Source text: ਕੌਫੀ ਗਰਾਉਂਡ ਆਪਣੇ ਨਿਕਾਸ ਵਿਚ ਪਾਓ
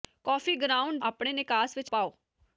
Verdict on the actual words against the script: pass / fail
pass